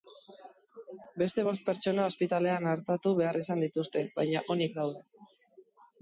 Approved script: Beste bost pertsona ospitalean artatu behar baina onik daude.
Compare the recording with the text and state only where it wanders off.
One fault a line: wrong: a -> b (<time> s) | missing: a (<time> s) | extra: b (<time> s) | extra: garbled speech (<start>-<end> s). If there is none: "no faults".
extra: izan dituzte (3.4 s)